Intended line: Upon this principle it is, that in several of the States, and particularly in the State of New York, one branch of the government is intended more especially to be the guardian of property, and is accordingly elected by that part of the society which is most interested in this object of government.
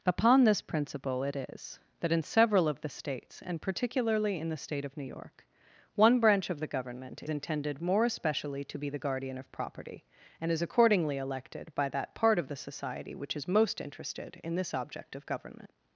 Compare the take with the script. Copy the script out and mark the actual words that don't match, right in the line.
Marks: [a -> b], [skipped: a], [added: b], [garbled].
Upon this principle it is, that in several of the States, and particularly in the State of New York, one branch of the government [skipped: is] intended more especially to be the guardian of property, and is accordingly elected by that part of the society which is most interested in this object of government.